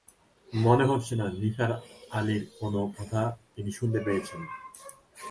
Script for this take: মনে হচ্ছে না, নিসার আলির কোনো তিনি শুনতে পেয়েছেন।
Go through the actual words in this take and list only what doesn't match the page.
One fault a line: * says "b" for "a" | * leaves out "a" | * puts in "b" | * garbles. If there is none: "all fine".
* puts in "কথা"